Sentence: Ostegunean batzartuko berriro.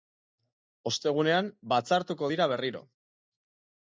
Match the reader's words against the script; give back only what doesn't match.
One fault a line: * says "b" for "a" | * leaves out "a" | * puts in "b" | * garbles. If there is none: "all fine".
* puts in "dira"